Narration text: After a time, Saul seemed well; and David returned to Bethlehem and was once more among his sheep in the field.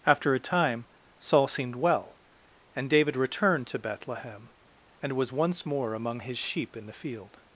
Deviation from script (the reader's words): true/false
false